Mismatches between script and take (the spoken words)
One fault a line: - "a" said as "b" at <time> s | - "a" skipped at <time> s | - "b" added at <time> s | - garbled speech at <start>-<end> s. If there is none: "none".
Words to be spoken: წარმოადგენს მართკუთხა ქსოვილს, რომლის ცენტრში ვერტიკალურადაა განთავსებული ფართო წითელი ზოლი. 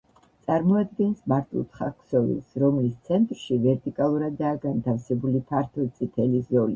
none